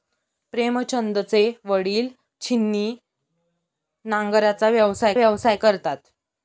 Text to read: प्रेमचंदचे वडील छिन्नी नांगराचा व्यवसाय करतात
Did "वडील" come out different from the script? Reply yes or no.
no